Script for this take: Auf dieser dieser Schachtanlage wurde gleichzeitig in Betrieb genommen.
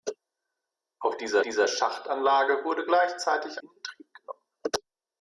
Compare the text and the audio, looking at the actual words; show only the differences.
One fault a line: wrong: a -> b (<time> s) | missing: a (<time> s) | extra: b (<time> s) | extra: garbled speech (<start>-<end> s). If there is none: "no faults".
no faults